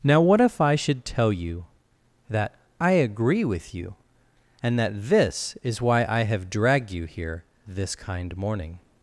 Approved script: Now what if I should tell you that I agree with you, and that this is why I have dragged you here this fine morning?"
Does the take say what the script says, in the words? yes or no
no